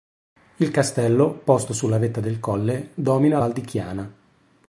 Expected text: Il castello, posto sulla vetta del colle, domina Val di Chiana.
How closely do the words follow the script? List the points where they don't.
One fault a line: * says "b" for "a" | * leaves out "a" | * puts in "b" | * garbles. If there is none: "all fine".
all fine